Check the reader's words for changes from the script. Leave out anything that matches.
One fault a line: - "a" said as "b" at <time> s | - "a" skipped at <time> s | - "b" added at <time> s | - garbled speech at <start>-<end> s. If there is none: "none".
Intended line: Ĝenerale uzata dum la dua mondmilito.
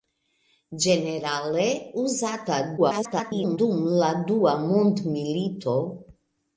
- garbled speech at 2.8-3.6 s